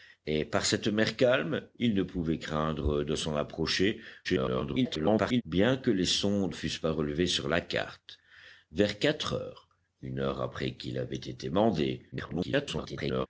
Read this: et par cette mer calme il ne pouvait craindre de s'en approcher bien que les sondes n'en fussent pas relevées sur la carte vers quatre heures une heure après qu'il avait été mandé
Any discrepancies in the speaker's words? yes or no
yes